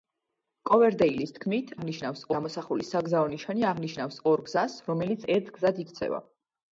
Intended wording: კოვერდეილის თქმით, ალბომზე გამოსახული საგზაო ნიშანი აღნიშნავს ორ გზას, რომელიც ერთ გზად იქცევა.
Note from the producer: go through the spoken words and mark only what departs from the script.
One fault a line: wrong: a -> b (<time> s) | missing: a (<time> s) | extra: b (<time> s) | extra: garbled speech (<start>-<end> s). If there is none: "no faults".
wrong: ალბომზე -> აღნიშნავს (1.8 s)